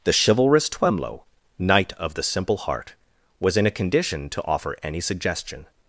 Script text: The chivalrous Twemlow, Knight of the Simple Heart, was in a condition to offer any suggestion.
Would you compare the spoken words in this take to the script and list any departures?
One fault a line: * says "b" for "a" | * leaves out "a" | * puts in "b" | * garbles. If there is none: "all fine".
all fine